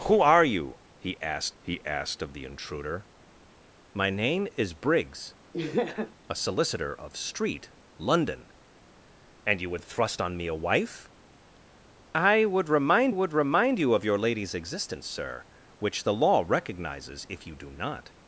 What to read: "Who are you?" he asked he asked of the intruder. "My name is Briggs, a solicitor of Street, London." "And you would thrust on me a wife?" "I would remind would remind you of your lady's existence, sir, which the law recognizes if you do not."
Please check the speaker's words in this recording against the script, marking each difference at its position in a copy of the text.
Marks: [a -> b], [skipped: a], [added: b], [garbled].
"Who are you?" he asked he asked of the intruder. "My name is Briggs, a solicitor of Street, London." "And you would thrust on me a wife?" "I would remind would remind you of your lady's existence, sir, which the law recognizes if you do not."